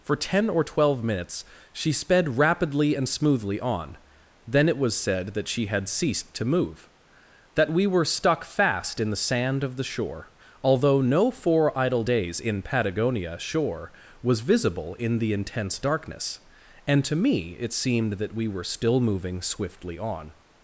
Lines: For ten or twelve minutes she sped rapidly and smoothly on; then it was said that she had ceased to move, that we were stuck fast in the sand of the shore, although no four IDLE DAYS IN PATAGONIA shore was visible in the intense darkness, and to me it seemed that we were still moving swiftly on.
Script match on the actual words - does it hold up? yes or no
yes